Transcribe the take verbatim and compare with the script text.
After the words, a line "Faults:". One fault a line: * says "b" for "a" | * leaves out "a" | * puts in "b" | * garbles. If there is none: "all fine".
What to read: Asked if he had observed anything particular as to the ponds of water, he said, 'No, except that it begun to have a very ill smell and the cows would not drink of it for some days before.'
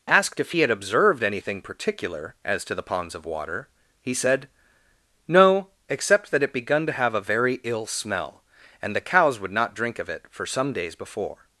Asked if he had observed anything particular as to the ponds of water, he said, 'No, except that it begun to have a very ill smell and the cows would not drink of it for some days before.'
Faults:
all fine